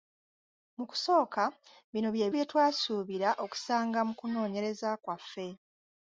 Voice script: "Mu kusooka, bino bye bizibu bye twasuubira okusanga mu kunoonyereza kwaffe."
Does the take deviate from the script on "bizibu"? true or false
true